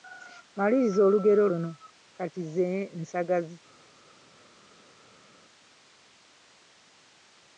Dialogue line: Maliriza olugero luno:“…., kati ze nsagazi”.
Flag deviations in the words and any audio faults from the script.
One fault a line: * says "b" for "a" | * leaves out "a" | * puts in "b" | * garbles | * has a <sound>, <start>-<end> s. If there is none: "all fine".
all fine